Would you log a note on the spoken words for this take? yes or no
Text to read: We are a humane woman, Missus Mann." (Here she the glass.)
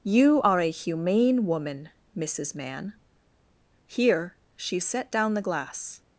yes